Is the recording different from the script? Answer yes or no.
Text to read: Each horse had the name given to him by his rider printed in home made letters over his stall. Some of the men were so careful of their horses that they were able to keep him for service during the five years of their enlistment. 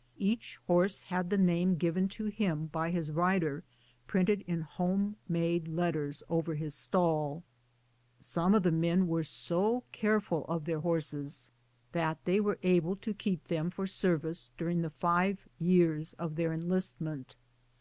yes